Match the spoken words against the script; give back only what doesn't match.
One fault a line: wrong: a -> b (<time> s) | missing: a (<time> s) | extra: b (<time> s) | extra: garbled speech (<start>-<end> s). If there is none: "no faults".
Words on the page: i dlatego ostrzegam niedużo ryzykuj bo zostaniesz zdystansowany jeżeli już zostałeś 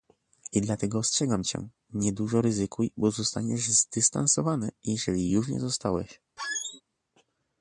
extra: cię (1.4 s)
extra: nie (5.5 s)